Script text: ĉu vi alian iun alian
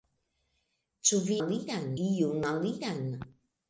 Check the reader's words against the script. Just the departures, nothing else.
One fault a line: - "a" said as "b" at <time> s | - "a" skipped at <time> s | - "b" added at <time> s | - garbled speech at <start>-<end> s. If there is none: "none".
none